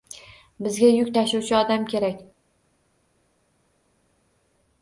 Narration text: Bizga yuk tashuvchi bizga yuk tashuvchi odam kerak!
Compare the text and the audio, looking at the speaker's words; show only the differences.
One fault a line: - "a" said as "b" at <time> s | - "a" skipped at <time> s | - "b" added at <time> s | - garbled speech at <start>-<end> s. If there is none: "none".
- "bizga yuk tashuvchi" skipped at 1.6 s